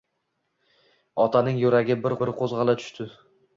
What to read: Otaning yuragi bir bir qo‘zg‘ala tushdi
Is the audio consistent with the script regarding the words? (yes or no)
yes